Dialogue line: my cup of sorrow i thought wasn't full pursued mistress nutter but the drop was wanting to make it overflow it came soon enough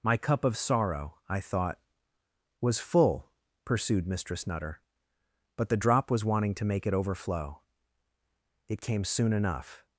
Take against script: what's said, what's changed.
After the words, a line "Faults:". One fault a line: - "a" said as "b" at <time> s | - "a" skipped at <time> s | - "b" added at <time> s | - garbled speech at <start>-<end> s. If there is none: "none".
my cup of sorrow i thought was full pursued mistress nutter but the drop was wanting to make it overflow it came soon enough
Faults:
- "wasn't" said as "was" at 2.6 s